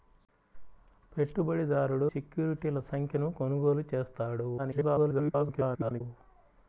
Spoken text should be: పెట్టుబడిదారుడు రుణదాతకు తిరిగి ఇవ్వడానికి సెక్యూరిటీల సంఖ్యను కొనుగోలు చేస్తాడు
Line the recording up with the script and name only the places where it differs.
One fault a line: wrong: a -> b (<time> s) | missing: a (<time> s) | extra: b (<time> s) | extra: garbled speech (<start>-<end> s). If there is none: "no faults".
missing: రుణదాతకు తిరిగి ఇవ్వడానికి (2.1 s)
extra: garbled speech (4.6-6.0 s)